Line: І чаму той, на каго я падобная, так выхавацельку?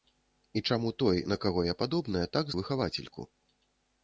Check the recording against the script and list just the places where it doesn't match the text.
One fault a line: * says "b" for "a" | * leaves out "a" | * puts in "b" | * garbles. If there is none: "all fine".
all fine